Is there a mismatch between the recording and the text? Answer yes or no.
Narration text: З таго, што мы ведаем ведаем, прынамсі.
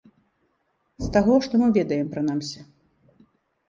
yes